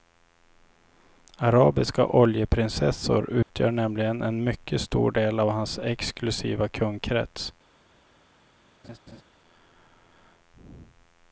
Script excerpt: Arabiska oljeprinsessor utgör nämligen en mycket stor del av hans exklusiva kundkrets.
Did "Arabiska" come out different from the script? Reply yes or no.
no